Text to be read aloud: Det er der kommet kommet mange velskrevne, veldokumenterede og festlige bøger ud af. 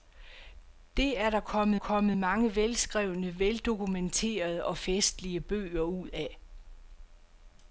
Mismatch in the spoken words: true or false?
false